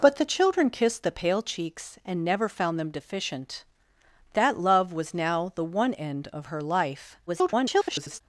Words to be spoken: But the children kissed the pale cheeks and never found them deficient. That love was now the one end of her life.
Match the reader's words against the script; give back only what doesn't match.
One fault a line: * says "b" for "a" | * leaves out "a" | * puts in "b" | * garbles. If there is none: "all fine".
* garbles